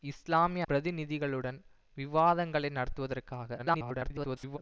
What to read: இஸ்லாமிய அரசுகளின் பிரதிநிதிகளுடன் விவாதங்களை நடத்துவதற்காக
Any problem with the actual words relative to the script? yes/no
yes